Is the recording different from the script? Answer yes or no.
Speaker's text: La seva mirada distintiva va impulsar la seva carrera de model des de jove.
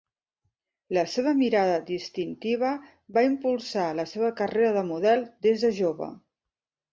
no